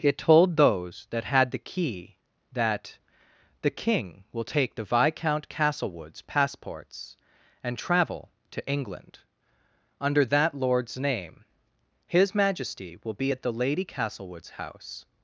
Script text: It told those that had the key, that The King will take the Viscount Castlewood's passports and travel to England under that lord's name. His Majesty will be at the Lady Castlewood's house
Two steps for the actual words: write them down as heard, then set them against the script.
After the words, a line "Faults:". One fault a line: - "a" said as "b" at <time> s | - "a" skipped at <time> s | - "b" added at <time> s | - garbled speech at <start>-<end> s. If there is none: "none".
It told those that had the key, that The King will take the Viscount Castlewood's passports and travel to England under that lord's name. His Majesty will be at the Lady Castlewood's house
Faults:
none